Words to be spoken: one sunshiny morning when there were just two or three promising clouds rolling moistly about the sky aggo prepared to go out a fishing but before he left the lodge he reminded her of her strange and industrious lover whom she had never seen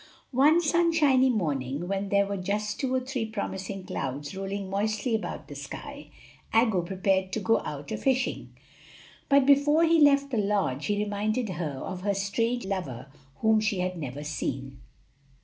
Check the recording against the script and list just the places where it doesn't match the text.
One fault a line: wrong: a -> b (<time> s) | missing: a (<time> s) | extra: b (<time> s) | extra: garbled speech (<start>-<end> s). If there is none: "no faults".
missing: and industrious (12.6 s)